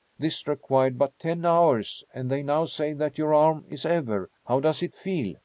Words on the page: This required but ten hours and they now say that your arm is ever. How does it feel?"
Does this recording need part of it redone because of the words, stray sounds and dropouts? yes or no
no